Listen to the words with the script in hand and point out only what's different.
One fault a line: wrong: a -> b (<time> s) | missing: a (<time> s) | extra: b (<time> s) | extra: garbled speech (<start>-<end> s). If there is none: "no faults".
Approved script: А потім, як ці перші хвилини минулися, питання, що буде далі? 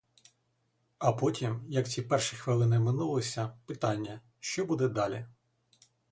no faults